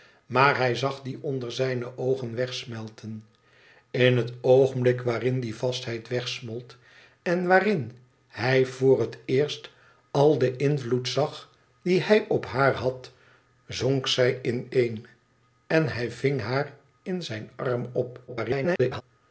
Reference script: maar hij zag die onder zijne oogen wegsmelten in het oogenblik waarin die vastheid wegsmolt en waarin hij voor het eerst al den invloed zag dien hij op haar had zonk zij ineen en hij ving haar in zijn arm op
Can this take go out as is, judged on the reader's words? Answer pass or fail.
fail